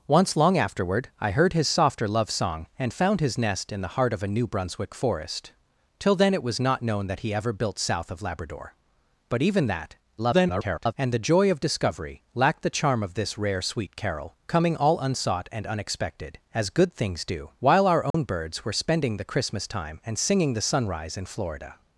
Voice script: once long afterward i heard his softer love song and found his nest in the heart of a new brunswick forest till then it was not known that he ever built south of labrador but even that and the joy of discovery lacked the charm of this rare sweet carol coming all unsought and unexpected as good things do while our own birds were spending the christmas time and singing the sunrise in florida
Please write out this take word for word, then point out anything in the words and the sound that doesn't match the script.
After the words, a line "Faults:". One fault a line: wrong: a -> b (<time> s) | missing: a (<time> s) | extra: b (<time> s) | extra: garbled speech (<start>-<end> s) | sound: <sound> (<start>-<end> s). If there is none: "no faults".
once long afterward i heard his softer love song and found his nest in the heart of a new brunswick forest till then it was not known that he ever built south of labrador but even that [garbled] and the joy of discovery lacked the charm of this rare sweet carol coming all unsought and unexpected as good things do while our own birds were spending the christmas time and singing the sunrise in florida
Faults:
extra: garbled speech (10.2-10.9 s)
sound: dropout (18.1-18.1 s)